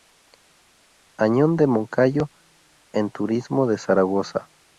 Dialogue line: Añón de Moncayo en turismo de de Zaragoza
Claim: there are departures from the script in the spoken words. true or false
true